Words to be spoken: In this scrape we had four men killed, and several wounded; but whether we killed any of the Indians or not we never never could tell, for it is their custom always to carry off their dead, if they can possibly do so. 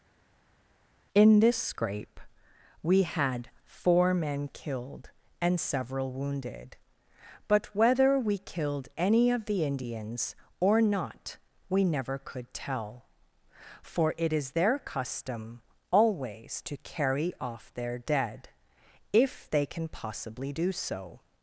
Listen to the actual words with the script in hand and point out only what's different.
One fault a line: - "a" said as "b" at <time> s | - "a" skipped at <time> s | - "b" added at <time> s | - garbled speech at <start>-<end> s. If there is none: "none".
- "never" skipped at 12.2 s